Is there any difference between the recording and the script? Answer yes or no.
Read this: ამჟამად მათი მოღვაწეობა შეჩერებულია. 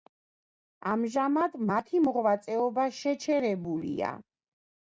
no